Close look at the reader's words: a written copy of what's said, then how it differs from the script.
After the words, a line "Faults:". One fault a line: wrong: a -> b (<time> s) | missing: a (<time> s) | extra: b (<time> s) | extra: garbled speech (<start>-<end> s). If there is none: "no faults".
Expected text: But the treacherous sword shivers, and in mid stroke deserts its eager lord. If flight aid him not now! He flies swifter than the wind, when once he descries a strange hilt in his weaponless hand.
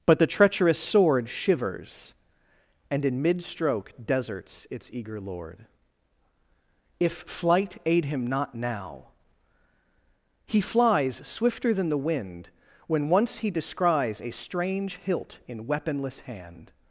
But the treacherous sword shivers, and in mid stroke deserts its eager lord. If flight aid him not now! He flies swifter than the wind, when once he descries a strange hilt in weaponless hand.
Faults:
missing: his (15.7 s)